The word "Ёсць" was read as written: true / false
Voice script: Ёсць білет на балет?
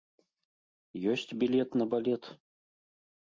true